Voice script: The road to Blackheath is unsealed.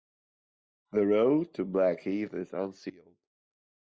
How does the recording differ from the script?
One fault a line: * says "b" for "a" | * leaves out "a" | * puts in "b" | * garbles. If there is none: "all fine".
all fine